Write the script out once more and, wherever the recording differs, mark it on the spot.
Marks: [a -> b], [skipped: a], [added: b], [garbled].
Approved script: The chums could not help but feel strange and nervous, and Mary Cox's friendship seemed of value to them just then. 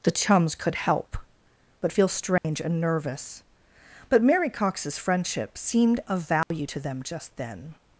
The chums could [skipped: not] help but feel strange and nervous, [and -> but] Mary Cox's friendship seemed of value to them just then.